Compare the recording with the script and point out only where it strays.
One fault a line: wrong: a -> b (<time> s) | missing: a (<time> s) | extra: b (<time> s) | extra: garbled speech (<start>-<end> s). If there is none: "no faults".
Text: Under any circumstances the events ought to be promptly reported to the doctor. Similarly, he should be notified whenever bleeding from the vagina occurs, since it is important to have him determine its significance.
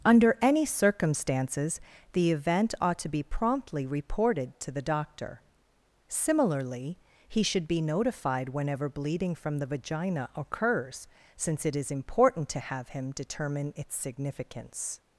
wrong: events -> event (2.3 s)